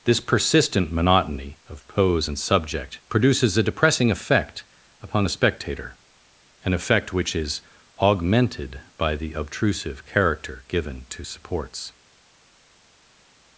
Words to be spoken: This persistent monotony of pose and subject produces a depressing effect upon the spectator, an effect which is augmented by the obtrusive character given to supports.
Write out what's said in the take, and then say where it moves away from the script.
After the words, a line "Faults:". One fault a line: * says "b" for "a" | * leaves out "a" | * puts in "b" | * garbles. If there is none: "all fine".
This persistent monotony of pose and subject produces a depressing effect upon the spectator, an effect which is augmented by the obtrusive character given to supports.
Faults:
all fine